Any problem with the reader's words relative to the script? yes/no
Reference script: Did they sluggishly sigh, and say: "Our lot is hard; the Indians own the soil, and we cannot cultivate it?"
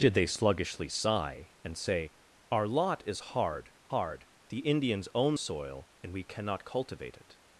yes